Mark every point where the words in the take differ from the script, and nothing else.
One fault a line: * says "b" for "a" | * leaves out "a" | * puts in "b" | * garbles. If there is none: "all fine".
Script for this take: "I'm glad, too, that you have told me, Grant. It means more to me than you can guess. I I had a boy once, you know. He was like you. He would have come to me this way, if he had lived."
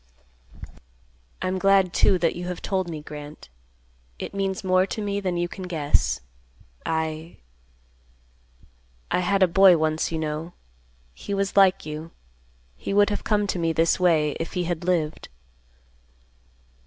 all fine